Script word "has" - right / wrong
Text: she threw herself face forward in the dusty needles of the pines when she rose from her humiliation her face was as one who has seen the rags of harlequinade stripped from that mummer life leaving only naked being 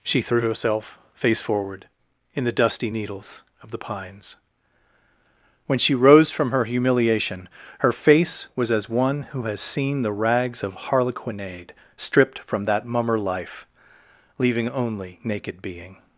right